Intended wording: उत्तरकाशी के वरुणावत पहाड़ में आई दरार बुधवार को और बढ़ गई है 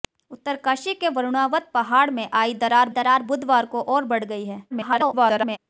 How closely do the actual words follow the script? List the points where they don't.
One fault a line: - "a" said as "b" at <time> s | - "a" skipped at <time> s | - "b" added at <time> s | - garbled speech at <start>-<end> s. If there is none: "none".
- "दरार" added at 2.9 s
- garbled speech at 4.7-5.6 s